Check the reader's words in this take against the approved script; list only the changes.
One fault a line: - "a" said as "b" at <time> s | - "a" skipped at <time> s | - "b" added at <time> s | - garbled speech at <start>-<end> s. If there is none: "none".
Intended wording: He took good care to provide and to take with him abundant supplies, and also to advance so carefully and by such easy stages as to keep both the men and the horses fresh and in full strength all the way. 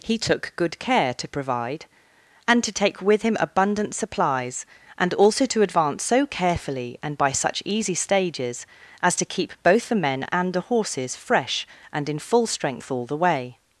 none